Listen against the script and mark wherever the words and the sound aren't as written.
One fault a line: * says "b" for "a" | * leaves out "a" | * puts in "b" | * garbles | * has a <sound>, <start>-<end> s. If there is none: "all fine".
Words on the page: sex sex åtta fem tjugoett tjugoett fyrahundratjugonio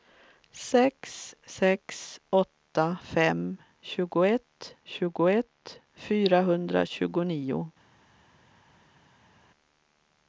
all fine